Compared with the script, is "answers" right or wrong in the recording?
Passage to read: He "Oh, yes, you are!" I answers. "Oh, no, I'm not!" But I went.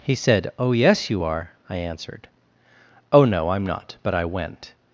wrong